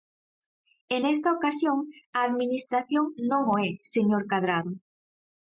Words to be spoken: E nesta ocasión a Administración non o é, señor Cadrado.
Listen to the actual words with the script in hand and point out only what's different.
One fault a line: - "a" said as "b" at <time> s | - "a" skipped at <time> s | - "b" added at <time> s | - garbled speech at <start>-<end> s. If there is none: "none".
none